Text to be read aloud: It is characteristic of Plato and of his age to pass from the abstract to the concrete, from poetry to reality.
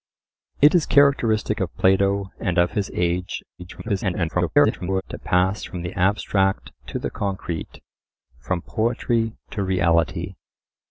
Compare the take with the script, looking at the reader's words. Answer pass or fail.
fail